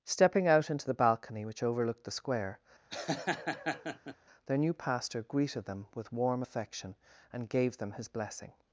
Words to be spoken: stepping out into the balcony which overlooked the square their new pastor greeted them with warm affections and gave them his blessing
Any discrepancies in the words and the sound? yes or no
yes